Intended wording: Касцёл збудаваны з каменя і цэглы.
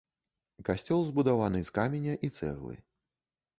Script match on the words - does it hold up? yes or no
yes